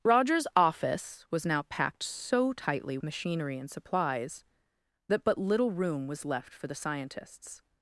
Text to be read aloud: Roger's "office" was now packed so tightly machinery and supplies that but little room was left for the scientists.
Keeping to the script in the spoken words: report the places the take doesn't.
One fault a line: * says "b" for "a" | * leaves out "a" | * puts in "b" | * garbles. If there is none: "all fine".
all fine